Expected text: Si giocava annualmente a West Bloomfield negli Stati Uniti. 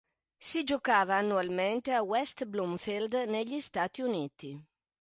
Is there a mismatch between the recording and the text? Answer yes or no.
no